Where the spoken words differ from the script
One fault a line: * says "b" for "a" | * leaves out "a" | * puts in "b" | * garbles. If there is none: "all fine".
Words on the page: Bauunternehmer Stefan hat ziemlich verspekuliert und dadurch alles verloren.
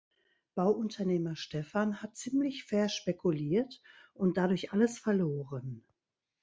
all fine